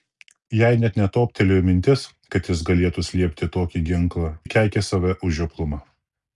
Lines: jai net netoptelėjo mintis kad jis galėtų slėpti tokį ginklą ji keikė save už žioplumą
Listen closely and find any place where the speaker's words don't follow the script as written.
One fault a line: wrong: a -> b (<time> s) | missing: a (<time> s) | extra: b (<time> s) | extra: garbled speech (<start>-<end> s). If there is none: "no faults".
no faults